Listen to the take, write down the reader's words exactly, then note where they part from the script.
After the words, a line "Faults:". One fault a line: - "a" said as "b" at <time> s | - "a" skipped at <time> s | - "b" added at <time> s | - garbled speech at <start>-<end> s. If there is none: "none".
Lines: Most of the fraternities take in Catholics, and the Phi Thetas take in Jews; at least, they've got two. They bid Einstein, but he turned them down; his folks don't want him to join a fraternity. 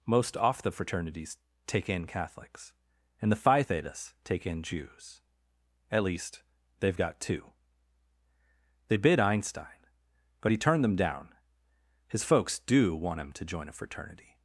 Most off the fraternities take in Catholics, and the Phi Thetas take in Jews; at least, they've got two. They bid Einstein, but he turned them down; his folks do want him to join a fraternity.
Faults:
- "of" said as "off" at 0.3 s
- "don't" said as "do" at 12.6 s